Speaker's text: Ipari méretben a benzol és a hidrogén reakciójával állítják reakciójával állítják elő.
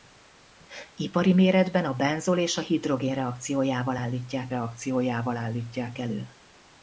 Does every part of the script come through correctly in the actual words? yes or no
yes